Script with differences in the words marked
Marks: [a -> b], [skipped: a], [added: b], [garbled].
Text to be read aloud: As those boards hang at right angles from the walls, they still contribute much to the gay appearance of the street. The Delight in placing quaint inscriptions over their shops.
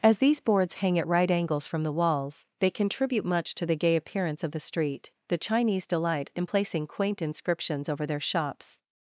As [those -> these] boards hang at right angles from the walls, they [skipped: still] contribute much to the gay appearance of the street. The [added: Chinese] Delight in placing quaint inscriptions over their shops.